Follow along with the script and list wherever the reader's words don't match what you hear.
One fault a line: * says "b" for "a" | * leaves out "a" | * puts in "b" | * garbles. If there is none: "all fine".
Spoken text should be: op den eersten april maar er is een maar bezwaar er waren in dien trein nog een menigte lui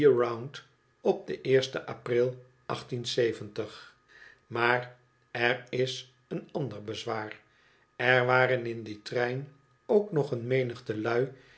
* says "ander" for "maar"
* puts in "ook"